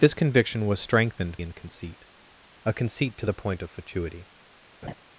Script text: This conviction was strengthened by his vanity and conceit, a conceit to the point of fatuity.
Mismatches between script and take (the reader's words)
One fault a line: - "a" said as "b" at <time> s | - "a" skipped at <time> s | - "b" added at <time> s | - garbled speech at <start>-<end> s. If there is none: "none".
- "by his vanity" skipped at 1.4 s